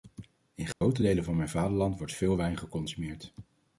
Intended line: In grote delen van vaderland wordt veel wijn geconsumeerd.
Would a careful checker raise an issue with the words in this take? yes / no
yes